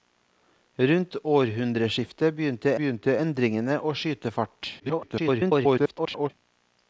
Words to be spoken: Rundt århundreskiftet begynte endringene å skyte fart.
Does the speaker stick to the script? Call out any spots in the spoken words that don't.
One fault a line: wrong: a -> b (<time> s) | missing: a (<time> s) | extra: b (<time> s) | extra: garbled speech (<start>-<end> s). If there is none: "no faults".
extra: begynte (2.8 s)
extra: garbled speech (4.8-6.3 s)